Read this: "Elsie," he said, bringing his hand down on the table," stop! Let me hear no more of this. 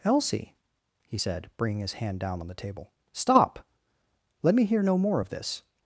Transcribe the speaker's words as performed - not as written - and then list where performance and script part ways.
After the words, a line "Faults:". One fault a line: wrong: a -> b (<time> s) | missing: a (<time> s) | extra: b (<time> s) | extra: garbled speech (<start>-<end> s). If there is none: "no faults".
"Elsie," he said, bringing his hand down on the table," stop! Let me hear no more of this.
Faults:
no faults